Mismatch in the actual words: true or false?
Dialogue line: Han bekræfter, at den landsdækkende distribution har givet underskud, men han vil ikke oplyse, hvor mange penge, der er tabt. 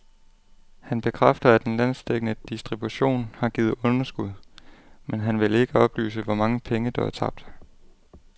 false